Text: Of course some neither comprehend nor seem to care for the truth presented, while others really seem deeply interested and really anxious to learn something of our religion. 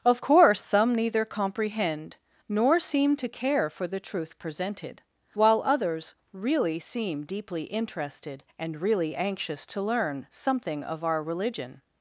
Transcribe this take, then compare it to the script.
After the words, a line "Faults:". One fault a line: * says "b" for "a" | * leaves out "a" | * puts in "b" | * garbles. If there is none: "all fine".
Of course some neither comprehend nor seem to care for the truth presented, while others really seem deeply interested and really anxious to learn something of our religion.
Faults:
all fine